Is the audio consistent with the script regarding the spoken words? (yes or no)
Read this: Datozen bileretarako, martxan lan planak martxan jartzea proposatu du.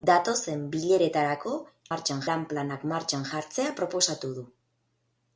yes